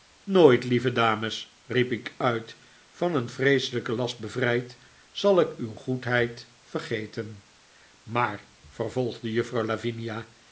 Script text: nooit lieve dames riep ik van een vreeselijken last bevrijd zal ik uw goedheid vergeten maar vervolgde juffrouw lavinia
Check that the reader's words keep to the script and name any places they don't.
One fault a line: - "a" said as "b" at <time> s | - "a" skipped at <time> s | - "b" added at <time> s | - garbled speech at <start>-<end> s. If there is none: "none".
- "uit" added at 2.2 s